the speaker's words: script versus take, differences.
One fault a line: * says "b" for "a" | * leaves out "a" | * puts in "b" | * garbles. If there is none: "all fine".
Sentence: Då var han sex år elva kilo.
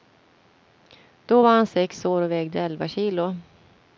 * puts in "och vägde"